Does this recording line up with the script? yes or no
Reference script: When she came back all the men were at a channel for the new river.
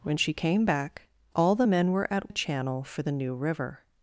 yes